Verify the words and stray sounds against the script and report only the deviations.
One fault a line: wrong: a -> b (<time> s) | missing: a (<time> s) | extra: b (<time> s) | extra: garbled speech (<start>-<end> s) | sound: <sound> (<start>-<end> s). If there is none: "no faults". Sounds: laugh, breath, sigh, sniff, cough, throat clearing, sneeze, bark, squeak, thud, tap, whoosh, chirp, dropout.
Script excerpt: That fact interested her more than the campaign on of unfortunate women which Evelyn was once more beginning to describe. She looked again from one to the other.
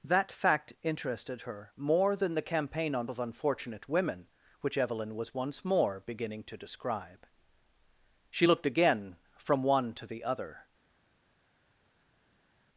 no faults